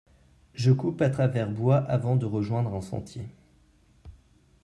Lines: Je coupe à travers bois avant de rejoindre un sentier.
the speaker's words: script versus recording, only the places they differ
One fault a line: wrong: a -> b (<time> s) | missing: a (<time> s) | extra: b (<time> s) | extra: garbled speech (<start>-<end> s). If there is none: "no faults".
no faults